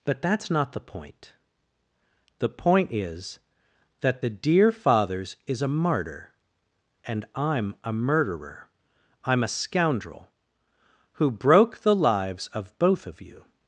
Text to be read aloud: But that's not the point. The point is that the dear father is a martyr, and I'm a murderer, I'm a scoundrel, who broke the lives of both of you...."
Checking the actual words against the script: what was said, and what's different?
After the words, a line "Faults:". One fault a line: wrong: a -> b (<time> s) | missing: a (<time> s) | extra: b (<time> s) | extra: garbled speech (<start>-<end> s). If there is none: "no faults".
But that's not the point. The point is that the dear fathers is a martyr, and I'm a murderer, I'm a scoundrel, who broke the lives of both of you...."
Faults:
wrong: father -> fathers (4.7 s)